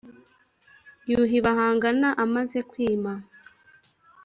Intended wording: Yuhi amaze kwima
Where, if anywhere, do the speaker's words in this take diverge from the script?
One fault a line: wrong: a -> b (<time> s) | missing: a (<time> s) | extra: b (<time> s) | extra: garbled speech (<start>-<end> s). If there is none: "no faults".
extra: bahangana (1.4 s)